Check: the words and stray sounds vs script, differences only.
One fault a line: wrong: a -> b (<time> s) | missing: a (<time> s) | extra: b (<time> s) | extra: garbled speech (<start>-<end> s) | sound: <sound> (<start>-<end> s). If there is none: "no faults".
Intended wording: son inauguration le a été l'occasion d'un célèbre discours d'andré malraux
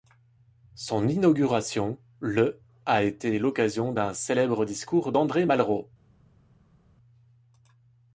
no faults